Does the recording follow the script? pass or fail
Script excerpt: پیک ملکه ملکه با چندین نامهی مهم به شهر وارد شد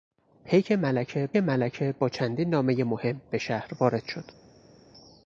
pass